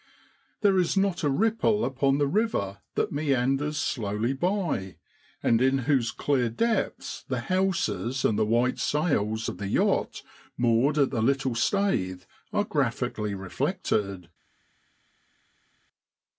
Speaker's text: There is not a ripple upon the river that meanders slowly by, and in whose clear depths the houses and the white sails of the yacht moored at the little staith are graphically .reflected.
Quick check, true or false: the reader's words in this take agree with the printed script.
true